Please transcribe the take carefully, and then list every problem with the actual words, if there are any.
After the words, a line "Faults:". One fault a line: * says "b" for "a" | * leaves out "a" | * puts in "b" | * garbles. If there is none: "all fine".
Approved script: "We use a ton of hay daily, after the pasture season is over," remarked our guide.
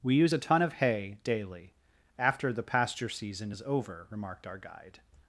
"We use a ton of hay daily, after the pasture season is over," remarked our guide.
Faults:
all fine